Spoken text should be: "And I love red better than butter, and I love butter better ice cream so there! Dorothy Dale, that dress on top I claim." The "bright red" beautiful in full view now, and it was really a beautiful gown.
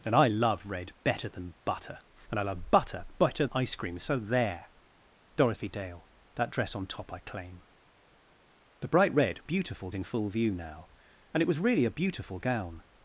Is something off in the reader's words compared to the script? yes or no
no